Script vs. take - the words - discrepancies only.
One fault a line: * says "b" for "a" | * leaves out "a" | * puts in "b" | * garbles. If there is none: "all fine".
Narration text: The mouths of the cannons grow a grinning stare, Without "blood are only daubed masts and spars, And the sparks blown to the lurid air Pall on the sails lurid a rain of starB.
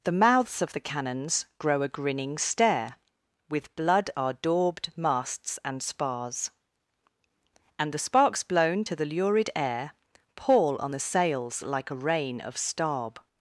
* says "With" for "Without"
* leaves out "only"
* says "like" for "lurid"